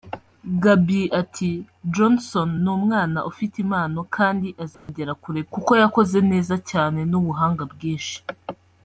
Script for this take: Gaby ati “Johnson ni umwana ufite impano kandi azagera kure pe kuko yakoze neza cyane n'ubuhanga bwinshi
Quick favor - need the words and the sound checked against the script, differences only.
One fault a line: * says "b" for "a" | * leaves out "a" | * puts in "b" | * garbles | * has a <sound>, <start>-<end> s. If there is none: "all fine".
* has a dropout, 4.7-4.9 s
* leaves out "pe"